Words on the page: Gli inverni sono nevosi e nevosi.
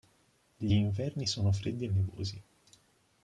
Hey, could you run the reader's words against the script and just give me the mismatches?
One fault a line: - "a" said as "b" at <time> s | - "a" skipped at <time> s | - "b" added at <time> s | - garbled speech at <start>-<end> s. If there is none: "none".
- "nevosi" said as "freddi" at 1.5 s